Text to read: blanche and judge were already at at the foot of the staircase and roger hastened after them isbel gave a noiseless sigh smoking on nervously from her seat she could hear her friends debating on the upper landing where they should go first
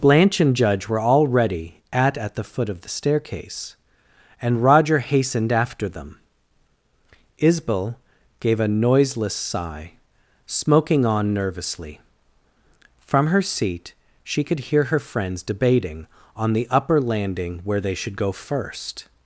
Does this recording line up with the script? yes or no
yes